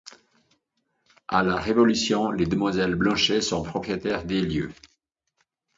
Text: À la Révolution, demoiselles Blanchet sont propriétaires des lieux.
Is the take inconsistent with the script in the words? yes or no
yes